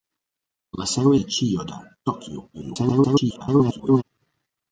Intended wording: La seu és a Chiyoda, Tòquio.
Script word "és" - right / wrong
wrong